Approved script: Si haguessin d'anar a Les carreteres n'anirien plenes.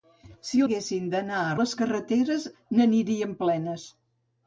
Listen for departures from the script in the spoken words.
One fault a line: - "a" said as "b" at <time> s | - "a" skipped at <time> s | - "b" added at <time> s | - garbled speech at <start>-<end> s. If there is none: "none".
none